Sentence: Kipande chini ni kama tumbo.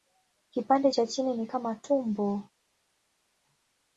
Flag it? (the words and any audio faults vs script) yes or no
yes